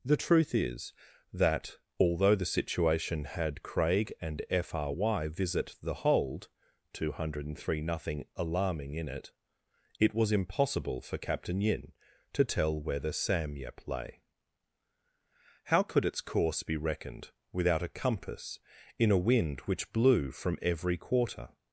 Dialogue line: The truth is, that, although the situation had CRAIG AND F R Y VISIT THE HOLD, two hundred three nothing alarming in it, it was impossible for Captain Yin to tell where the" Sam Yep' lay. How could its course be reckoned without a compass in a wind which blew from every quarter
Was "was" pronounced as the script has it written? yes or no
yes